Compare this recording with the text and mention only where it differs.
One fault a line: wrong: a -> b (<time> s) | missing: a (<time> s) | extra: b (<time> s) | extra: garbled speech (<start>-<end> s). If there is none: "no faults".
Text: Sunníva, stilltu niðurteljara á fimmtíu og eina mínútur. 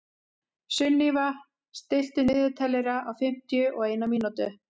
no faults